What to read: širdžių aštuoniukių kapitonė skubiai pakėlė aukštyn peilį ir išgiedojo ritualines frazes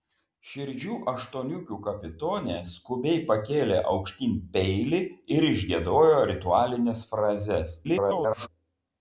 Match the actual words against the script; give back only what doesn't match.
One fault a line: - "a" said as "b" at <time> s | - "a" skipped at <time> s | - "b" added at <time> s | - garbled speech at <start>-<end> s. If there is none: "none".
- garbled speech at 7.8-8.5 s